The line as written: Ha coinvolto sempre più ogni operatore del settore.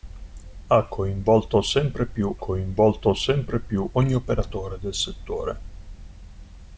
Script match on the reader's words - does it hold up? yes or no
no